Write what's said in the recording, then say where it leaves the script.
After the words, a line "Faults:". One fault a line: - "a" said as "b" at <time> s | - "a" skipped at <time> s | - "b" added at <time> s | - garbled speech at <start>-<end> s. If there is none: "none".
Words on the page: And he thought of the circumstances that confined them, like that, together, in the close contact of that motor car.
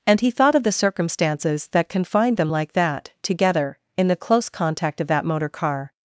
And he thought of the circumstances that confined them, like that, together, in the close contact of that motor car.
Faults:
none